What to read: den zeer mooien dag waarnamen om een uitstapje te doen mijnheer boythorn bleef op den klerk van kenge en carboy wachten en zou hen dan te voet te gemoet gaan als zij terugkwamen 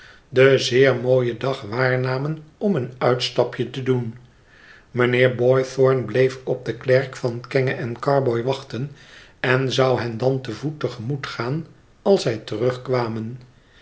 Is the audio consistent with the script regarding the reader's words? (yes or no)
yes